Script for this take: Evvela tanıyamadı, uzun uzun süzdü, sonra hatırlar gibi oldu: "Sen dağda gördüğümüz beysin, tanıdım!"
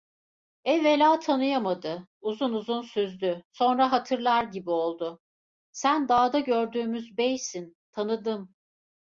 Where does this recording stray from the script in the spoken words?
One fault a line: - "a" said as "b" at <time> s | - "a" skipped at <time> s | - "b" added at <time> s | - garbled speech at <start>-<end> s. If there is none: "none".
none